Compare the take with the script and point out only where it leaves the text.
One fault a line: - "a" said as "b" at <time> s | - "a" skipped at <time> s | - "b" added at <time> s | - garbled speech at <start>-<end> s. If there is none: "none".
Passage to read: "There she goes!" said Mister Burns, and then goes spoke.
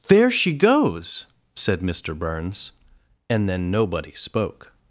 - "goes" said as "nobody" at 3.7 s